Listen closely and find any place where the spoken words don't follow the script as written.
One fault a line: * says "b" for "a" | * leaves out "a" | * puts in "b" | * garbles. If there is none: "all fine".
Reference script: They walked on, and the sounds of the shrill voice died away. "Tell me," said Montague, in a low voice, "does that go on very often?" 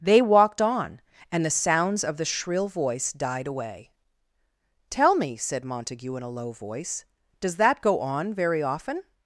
all fine